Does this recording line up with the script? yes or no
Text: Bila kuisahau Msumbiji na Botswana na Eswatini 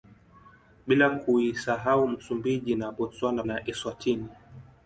yes